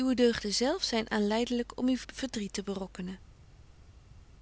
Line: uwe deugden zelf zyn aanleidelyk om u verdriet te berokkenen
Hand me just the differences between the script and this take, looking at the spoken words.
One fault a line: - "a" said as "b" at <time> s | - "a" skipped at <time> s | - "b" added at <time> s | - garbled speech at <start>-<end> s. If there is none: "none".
none